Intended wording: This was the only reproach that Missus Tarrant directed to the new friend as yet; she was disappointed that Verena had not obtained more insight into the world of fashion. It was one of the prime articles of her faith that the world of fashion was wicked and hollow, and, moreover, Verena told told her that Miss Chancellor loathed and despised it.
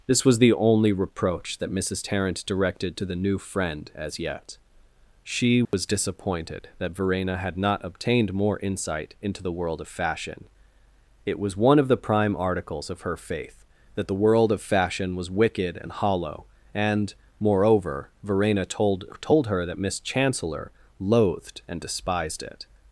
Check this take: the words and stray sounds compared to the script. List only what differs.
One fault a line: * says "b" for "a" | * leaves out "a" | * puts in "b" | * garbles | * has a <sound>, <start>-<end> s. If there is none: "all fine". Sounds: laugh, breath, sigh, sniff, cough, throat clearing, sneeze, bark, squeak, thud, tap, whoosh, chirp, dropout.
* has a dropout, 5.7-5.7 s